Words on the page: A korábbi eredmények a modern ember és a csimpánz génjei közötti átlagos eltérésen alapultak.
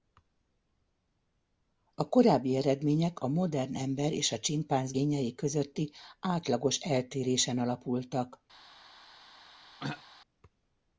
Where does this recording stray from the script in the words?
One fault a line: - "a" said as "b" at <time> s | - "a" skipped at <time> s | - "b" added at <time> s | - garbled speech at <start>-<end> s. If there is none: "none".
none